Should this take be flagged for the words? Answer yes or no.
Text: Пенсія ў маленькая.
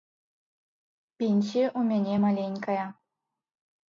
yes